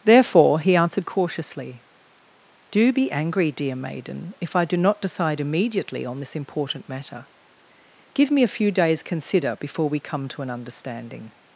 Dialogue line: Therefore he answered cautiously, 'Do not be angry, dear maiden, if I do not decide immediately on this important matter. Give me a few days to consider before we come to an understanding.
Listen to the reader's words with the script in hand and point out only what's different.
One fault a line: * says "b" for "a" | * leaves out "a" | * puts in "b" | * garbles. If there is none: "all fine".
* leaves out "not"
* leaves out "to"